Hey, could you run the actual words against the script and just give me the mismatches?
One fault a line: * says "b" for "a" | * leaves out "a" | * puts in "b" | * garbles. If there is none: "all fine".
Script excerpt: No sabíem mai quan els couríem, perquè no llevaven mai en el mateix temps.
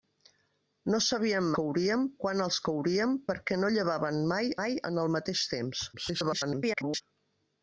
* says "couríem" for "mai"
* puts in "mai"
* garbles